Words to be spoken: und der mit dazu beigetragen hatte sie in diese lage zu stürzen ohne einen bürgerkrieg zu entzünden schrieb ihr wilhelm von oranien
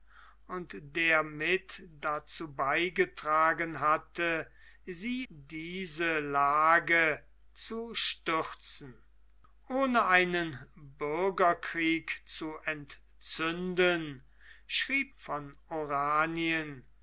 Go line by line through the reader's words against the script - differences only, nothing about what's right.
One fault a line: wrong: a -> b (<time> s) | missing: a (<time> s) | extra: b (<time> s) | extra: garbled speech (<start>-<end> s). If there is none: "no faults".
missing: in (5.3 s)
missing: ihr wilhelm (15.1 s)